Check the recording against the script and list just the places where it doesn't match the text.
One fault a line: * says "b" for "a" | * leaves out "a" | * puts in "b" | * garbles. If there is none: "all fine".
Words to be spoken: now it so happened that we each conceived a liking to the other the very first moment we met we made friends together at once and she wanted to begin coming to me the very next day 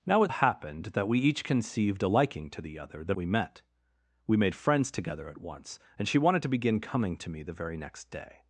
* leaves out "so"
* leaves out "very first moment"